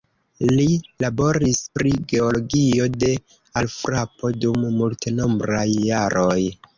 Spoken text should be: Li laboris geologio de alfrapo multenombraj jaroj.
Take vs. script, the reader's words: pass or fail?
fail